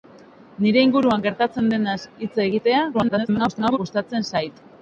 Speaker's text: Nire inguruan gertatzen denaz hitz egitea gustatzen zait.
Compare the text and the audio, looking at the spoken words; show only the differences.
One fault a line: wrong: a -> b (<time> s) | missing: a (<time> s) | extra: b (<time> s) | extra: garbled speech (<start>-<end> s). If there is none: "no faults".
extra: garbled speech (2.9-3.8 s)